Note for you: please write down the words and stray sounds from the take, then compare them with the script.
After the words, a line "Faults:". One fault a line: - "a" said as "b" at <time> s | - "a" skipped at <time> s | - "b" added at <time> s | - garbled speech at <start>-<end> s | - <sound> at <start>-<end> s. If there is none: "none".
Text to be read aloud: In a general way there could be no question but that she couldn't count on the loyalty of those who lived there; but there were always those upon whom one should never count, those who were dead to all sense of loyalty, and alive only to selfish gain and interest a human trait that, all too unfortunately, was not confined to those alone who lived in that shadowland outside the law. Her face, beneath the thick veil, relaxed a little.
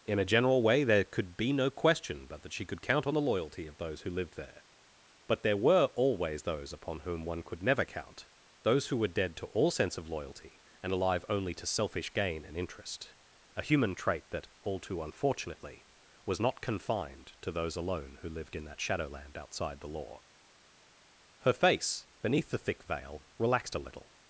In a general way there could be no question but that she could count on the loyalty of those who lived there; but there were always those upon whom one could never count, those who were dead to all sense of loyalty, and alive only to selfish gain and interest a human trait that, all too unfortunately, was not confined to those alone who lived in that shadowland outside the law. Her face, beneath the thick veil, relaxed a little.
Faults:
- "couldn't" said as "could" at 2.6 s
- "should" said as "could" at 7.4 s